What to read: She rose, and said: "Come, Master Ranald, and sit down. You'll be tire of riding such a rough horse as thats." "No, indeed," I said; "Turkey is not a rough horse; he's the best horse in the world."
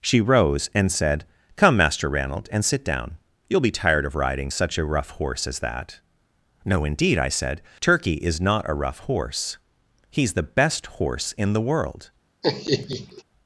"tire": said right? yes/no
no